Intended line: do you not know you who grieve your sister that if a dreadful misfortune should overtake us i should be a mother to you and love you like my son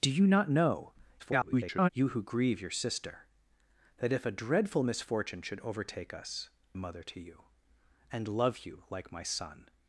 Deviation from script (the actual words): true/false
true